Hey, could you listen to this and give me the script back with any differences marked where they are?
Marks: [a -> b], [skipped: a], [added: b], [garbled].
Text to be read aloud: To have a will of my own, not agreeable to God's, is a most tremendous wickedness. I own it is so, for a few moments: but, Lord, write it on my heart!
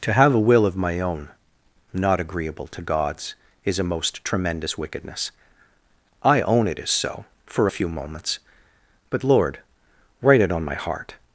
To have a will of my own, not agreeable to God's, is a most tremendous wickedness. I own it is so, for a few moments: but, Lord, write it on my heart!